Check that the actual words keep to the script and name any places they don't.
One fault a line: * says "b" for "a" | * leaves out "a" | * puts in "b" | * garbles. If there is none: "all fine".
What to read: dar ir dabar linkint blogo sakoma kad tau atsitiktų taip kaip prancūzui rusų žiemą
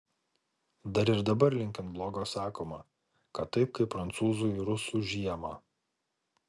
* leaves out "tau atsitiktų"